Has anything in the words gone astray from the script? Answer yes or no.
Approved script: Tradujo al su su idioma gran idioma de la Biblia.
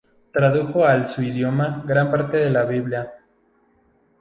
yes